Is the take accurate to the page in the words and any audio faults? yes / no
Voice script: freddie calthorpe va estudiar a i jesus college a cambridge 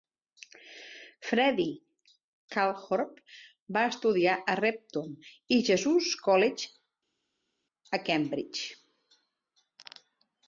no